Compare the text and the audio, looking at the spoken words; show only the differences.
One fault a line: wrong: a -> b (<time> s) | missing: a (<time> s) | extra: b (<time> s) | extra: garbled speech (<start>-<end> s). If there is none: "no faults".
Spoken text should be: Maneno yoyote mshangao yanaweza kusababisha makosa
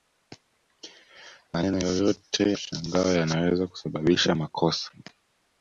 no faults